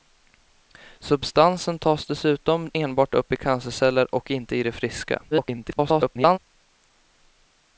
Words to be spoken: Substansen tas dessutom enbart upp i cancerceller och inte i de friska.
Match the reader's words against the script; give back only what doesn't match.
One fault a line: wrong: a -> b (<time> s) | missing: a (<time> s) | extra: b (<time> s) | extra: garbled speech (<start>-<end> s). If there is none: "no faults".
extra: garbled speech (5.3-6.4 s)